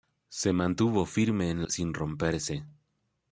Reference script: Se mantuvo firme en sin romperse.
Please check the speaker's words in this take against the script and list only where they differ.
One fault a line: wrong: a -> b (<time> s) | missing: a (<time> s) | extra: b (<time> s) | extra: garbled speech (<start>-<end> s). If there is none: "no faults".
no faults